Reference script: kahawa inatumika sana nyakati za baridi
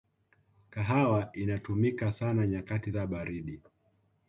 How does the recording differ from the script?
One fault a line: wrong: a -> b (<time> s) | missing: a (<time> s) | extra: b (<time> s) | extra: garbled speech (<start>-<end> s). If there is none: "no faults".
no faults